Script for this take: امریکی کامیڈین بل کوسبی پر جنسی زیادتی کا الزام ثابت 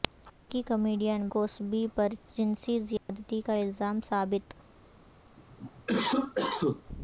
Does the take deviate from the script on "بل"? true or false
true